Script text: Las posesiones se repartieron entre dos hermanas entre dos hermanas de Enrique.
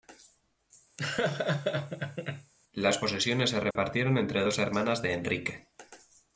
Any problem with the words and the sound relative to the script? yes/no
yes